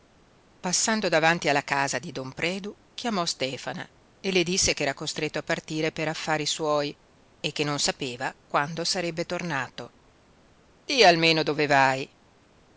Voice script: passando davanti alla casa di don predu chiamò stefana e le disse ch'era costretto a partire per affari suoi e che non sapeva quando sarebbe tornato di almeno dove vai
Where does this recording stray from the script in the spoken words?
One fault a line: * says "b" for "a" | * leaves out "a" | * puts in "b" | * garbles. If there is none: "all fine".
all fine